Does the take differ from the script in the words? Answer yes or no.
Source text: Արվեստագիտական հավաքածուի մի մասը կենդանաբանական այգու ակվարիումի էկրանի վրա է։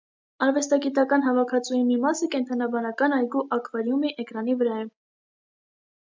no